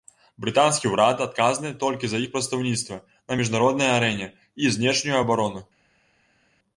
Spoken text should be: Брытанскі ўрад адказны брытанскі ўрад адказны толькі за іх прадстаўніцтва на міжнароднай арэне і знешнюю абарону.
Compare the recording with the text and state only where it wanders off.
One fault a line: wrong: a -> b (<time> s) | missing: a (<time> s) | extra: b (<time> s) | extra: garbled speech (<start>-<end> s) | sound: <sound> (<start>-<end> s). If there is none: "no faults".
missing: брытанскі ўрад адказны (1.7 s)